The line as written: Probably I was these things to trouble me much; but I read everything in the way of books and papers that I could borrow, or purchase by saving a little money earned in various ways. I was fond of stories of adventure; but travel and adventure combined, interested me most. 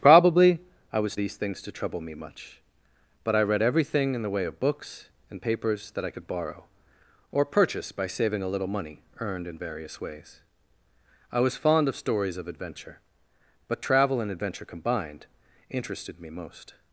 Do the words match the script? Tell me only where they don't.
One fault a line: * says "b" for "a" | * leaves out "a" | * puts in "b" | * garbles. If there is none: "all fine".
all fine